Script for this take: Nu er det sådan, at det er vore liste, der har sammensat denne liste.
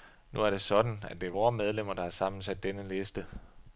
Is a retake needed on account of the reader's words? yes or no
yes